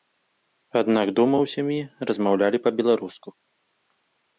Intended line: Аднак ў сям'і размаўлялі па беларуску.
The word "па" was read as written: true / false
true